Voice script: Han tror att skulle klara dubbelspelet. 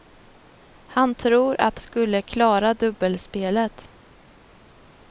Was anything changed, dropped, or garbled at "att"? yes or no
no